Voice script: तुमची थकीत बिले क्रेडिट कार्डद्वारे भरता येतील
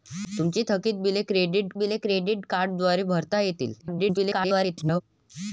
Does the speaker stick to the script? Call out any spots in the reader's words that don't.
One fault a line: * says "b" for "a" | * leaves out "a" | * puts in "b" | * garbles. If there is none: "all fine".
* puts in "बिले क्रेडिट"
* garbles